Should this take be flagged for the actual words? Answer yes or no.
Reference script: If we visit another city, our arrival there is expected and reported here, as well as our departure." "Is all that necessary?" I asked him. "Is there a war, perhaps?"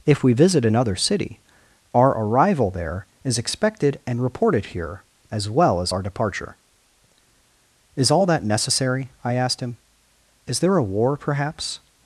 no